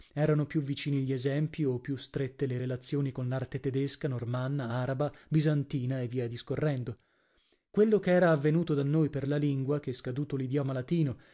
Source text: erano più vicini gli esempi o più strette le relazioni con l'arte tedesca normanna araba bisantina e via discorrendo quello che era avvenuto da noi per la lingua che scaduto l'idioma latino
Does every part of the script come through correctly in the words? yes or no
yes